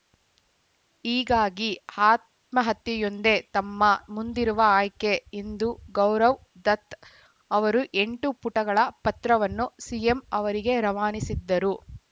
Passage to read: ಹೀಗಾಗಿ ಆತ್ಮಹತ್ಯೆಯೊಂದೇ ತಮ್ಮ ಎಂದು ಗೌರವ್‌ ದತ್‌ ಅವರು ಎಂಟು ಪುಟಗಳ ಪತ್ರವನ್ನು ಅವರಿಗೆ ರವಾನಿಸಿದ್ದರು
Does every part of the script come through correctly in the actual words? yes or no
no